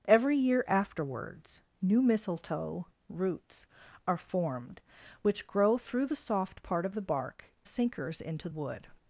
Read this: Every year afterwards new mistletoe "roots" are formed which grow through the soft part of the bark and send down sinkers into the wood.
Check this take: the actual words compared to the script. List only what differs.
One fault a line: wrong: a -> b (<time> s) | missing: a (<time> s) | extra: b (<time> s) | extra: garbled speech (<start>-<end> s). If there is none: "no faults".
missing: and send down (7.5 s)
missing: the (8.5 s)